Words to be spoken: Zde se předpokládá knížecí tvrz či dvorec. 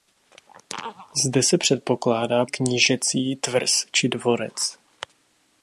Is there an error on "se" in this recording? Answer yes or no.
no